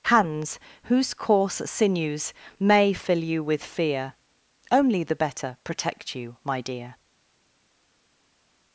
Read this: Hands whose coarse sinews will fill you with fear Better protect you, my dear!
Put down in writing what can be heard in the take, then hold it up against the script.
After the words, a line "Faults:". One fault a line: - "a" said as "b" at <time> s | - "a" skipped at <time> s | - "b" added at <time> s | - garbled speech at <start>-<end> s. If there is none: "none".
Hands whose coarse sinews may fill you with fear Only the better protect you, my dear!
Faults:
- "will" said as "may" at 2.6 s
- "Only the" added at 4.7 s